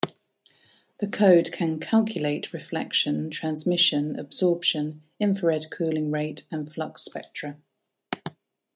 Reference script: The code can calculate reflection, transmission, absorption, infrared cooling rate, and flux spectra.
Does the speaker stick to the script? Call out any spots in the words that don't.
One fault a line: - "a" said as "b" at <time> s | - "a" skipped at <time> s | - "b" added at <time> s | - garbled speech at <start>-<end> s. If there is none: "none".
none